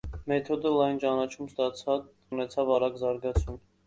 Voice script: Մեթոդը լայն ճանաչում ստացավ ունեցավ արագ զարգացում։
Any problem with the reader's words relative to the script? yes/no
no